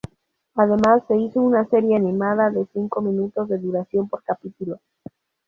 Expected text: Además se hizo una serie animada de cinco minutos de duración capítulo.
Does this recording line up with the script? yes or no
no